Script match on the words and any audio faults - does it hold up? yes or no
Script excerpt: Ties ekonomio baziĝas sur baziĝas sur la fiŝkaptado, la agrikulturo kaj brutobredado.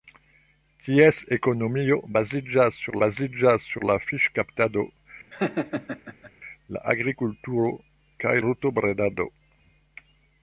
no